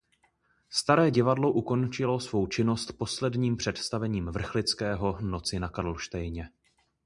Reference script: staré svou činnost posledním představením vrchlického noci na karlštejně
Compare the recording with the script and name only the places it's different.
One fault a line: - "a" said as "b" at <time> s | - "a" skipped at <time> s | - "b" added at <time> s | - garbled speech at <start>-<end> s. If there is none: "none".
- "divadlo ukončilo" added at 1.1 s